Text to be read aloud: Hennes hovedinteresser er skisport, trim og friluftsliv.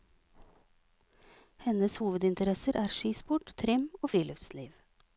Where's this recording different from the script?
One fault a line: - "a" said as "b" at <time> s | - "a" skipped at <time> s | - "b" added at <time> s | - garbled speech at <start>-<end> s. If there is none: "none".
none